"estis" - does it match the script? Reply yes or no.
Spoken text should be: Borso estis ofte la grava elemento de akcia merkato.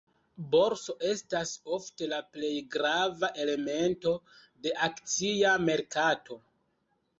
no